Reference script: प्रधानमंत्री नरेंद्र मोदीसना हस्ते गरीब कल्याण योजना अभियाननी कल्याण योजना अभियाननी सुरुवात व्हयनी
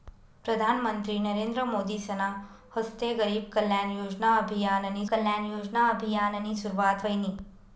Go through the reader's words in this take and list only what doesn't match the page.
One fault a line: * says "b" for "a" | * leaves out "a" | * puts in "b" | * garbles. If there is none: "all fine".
all fine